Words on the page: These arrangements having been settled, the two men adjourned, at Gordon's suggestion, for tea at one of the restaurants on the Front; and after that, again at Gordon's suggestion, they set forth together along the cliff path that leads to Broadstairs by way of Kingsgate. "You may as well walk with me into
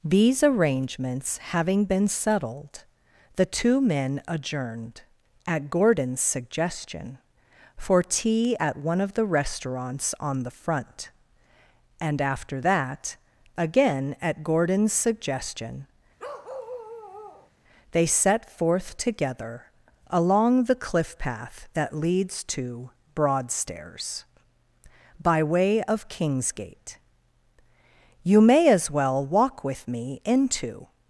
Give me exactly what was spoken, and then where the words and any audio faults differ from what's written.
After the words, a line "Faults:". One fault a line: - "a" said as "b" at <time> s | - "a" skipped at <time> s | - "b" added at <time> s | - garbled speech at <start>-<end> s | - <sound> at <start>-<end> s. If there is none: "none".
These arrangements having been settled, the two men adjourned, at Gordon's suggestion, for tea at one of the restaurants on the Front; and after that, again at Gordon's suggestion, they set forth together along the cliff path that leads to Broadstairs by way of Kingsgate. "You may as well walk with me into
Faults:
- bark at 16.2-17.5 s